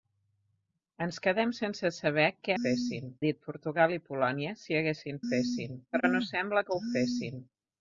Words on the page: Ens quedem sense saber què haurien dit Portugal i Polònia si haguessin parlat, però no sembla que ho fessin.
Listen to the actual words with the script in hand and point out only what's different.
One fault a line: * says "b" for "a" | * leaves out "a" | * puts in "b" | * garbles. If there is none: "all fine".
* says "fessin" for "haurien"
* says "fessin" for "parlat"